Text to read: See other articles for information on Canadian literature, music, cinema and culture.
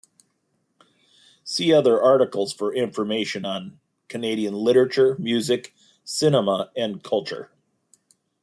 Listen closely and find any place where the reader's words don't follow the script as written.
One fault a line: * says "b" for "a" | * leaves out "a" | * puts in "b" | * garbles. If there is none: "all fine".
all fine